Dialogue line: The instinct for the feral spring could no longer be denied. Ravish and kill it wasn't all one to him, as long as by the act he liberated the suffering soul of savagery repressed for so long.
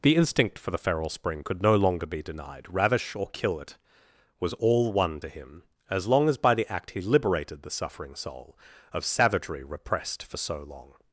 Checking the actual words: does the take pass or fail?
fail